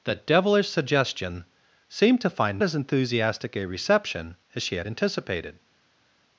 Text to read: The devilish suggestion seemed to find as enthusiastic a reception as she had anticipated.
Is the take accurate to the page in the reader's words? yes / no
yes